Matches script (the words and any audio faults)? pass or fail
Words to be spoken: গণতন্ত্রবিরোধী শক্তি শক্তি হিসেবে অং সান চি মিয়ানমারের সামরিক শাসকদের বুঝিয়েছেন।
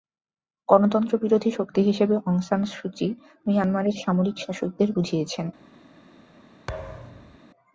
fail